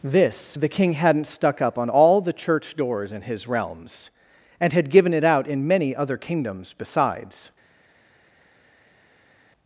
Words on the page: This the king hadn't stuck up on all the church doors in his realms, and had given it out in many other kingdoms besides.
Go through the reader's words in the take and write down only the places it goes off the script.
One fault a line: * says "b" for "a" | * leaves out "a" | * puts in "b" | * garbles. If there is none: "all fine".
all fine